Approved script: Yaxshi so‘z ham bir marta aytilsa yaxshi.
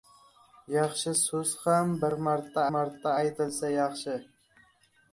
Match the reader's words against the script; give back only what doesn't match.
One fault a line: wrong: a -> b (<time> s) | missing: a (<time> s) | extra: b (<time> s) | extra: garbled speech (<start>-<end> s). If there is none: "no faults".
extra: marta (2.8 s)